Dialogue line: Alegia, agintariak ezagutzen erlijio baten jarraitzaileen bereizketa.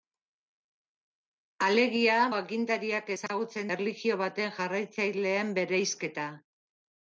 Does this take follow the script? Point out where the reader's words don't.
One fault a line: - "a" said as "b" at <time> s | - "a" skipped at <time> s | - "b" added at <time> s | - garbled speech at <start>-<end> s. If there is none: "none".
none